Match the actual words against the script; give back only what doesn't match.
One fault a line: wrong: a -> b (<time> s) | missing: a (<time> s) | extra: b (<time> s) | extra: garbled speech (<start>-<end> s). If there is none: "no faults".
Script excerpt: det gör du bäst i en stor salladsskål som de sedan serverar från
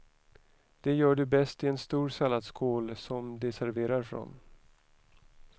missing: sedan (3.5 s)